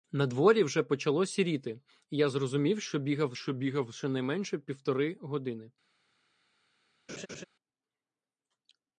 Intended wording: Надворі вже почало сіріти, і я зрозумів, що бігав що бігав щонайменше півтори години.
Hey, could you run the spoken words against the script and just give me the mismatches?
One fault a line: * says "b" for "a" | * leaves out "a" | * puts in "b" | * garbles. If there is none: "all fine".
all fine